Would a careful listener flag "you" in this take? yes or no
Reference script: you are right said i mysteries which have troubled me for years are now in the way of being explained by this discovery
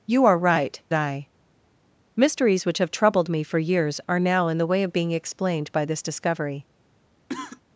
no